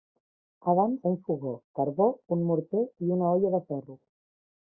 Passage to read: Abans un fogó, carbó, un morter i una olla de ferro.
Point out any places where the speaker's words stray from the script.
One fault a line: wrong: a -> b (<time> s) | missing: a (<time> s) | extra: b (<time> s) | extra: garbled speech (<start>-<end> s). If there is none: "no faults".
no faults